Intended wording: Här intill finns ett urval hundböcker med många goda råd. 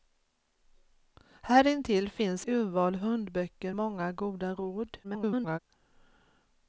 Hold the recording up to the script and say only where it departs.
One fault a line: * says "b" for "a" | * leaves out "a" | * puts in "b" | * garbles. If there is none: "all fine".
* leaves out "ett"
* leaves out "med"
* garbles